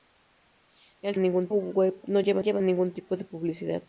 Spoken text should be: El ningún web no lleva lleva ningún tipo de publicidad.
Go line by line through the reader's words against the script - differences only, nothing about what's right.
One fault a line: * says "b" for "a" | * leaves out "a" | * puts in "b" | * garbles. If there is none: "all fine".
all fine